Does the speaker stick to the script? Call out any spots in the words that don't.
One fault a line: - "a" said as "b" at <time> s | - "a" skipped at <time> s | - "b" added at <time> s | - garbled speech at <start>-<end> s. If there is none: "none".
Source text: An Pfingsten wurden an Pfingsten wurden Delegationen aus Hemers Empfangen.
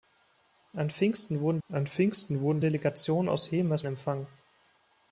none